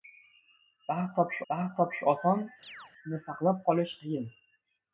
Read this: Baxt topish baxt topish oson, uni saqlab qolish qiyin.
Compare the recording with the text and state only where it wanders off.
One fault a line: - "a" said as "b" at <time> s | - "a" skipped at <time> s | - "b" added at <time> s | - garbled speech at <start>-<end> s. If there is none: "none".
none